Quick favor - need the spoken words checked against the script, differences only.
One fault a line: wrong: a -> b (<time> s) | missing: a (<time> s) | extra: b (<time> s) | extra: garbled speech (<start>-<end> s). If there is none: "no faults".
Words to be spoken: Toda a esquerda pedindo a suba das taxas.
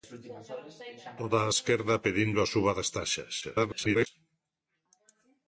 extra: garbled speech (3.4-4.1 s)